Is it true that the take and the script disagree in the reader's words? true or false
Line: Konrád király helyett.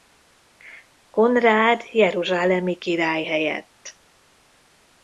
true